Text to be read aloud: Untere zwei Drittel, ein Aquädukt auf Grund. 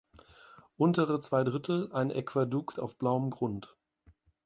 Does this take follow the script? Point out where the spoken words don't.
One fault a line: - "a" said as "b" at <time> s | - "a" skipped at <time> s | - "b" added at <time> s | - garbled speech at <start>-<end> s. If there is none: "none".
- "blauem" added at 3.0 s